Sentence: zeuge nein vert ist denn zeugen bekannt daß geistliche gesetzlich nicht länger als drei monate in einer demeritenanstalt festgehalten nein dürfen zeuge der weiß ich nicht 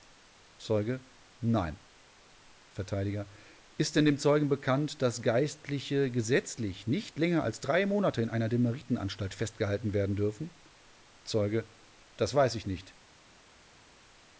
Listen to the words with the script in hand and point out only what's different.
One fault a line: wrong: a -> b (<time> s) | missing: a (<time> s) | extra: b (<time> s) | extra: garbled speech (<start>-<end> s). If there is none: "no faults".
extra: dem (4.0 s)
wrong: nein -> werden (9.9 s)
wrong: der -> das (12.2 s)